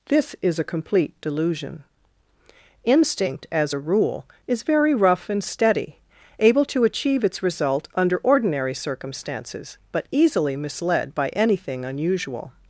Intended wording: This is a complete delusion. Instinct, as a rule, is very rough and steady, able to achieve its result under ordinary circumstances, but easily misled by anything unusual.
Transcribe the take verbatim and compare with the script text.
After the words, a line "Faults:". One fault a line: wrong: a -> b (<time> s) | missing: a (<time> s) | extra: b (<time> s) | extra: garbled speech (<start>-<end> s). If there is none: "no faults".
This is a complete delusion. Instinct, as a rule, is very rough and steady, able to achieve its result under ordinary circumstances, but easily misled by anything unusual.
Faults:
no faults